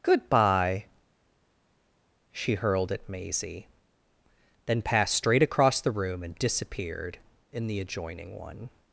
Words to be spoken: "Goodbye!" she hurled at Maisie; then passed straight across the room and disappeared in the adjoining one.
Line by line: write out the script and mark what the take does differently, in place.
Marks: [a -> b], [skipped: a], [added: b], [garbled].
"Goodbye!" she hurled at Maisie; then passed straight across the room and disappeared in the adjoining one.